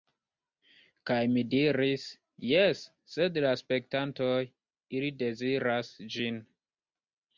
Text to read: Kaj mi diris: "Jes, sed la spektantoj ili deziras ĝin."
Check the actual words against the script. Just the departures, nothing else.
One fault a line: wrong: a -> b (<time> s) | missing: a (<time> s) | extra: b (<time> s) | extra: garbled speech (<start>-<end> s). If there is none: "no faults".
no faults